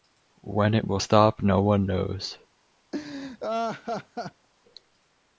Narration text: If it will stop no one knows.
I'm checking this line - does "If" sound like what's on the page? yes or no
no